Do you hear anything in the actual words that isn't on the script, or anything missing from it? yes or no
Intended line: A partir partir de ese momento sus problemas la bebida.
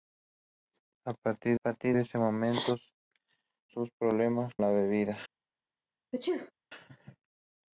no